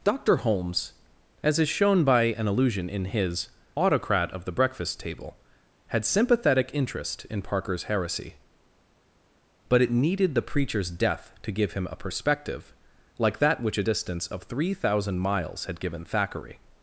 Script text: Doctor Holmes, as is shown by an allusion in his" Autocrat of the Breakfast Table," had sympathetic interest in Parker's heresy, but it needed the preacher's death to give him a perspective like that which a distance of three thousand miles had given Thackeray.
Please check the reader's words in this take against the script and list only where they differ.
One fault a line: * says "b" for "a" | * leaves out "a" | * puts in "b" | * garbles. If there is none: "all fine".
all fine